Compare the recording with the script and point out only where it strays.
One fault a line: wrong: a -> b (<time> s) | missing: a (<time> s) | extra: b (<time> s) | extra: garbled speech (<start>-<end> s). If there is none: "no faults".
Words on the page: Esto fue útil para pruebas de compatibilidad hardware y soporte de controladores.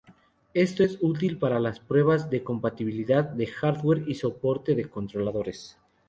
wrong: fue -> es (0.8 s)
extra: las (1.6 s)
extra: de (3.2 s)